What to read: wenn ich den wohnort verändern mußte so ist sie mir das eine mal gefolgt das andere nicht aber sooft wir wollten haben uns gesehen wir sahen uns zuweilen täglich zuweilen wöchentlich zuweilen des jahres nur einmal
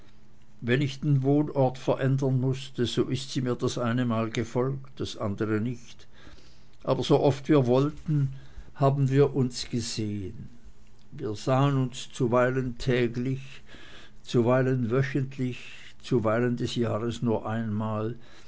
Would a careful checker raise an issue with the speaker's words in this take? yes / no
yes